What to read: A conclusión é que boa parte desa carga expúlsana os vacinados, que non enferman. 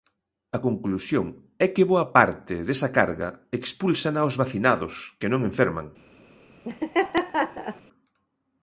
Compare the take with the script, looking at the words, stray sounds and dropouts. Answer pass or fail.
fail